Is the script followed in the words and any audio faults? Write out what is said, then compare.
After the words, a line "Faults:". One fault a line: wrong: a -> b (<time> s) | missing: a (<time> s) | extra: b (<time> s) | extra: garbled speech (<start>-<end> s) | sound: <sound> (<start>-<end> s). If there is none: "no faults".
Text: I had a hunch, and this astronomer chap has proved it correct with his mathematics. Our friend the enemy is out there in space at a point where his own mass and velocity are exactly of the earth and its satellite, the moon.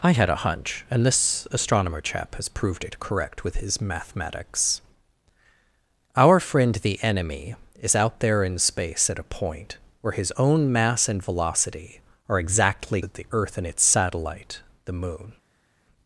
I had a hunch, and this astronomer chap has proved it correct with his mathematics. Our friend the enemy is out there in space at a point where his own mass and velocity are exactly of the earth and its satellite, the moon.
Faults:
no faults